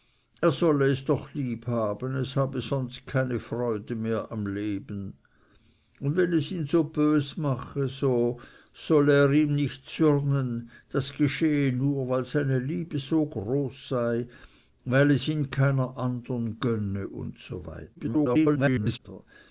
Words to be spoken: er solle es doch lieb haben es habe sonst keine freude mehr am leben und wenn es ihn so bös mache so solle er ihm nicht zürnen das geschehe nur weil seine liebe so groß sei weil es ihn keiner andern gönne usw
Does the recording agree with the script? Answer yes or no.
no